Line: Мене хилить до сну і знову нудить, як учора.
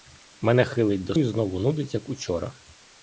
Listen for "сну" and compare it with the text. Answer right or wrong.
wrong